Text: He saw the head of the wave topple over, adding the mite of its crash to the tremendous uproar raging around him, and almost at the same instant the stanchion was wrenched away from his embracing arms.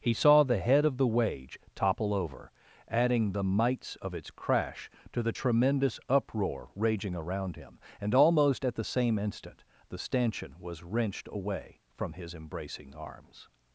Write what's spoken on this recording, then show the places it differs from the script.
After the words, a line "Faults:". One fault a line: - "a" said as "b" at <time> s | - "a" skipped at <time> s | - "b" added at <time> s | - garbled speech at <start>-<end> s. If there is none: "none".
He saw the head of the wage topple over, adding the mites of its crash to the tremendous uproar raging around him, and almost at the same instant the stanchion was wrenched away from his embracing arms.
Faults:
- "wave" said as "wage" at 1.1 s
- "mite" said as "mites" at 3.4 s